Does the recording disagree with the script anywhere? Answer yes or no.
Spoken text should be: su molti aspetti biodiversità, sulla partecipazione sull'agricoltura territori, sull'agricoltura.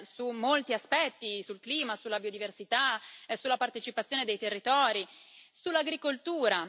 yes